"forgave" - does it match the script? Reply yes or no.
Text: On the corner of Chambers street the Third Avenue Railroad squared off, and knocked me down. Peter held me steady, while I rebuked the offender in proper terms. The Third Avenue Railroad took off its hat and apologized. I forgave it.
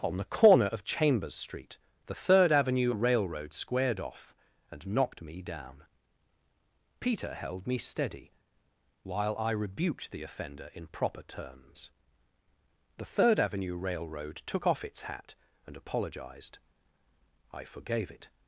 yes